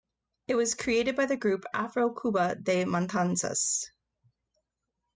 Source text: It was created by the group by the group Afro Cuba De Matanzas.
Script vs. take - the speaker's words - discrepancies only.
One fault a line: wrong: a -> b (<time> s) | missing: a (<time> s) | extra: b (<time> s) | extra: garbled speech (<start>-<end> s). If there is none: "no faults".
missing: by the group (1.6 s)